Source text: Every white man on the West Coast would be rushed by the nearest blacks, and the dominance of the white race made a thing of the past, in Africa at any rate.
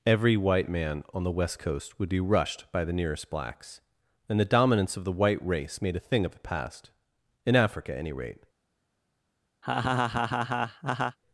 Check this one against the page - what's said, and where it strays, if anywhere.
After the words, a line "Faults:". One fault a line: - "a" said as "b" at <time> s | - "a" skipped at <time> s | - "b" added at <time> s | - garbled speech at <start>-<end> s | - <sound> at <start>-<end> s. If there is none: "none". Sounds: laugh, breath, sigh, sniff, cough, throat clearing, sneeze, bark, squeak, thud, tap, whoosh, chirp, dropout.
Every white man on the West Coast would be rushed by the nearest blacks, and the dominance of the white race made a thing of the past, in Africa at any rate.
Faults:
- laugh at 9.6-11.2 s